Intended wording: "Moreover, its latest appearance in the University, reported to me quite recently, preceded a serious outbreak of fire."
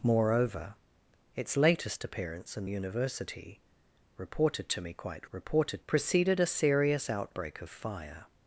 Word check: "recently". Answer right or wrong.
wrong